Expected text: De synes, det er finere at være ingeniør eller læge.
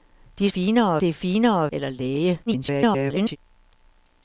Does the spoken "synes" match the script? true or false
false